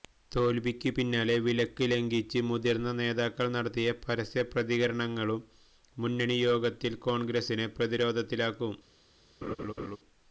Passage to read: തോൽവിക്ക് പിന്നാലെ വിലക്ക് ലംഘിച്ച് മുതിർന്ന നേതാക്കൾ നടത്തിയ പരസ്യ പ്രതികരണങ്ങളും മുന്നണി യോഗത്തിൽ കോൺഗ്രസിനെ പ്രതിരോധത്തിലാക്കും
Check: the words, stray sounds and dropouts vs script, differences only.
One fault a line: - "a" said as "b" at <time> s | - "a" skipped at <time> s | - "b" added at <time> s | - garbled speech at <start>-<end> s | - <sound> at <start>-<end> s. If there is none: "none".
- laugh at 9.4-10.0 s